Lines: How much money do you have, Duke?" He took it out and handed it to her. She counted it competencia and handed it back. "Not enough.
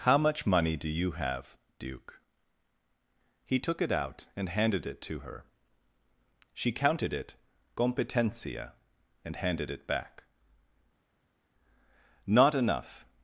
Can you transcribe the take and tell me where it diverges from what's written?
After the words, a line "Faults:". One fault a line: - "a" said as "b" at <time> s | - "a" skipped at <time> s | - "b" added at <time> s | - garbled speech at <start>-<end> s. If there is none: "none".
How much money do you have, Duke?" He took it out and handed it to her. She counted it competencia and handed it back. "Not enough.
Faults:
none